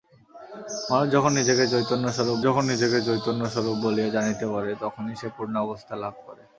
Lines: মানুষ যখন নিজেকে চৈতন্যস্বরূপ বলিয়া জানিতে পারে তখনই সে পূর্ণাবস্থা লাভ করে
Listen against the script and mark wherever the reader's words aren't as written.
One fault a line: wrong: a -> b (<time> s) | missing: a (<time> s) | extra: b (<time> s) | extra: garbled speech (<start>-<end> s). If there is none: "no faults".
extra: যখন নিজেকে চৈতন্যস্বরূপ (2.4 s)